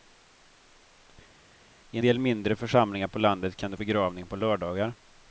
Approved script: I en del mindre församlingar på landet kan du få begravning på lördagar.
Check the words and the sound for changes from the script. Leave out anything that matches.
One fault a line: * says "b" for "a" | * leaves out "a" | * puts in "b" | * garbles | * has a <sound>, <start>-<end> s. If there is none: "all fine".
* leaves out "en"
* leaves out "få"